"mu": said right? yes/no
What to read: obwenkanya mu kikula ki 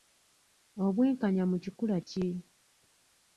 yes